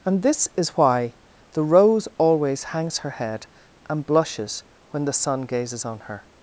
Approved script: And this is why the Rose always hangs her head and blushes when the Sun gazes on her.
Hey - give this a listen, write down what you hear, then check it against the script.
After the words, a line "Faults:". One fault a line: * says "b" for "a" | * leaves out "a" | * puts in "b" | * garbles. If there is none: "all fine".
And this is why the Rose always hangs her head and blushes when the Sun gazes on her.
Faults:
all fine